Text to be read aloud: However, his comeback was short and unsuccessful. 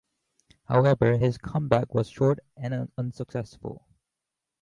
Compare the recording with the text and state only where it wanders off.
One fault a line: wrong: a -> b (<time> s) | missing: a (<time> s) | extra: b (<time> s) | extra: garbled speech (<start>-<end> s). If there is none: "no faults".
no faults